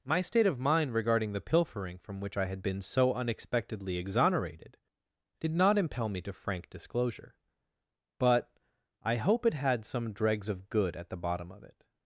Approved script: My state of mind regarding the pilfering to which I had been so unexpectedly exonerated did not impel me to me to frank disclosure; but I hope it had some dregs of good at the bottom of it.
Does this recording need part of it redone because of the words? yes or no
yes